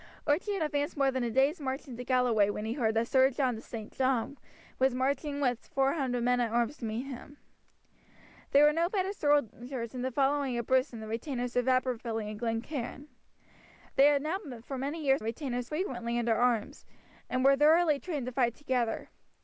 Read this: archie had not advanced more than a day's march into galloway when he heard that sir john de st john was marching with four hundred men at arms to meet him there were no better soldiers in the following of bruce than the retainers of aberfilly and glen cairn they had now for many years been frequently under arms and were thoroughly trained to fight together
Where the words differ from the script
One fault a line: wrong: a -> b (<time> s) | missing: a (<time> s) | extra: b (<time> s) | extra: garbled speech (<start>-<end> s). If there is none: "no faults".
missing: not (0.6 s)
wrong: been -> retainers (15.2 s)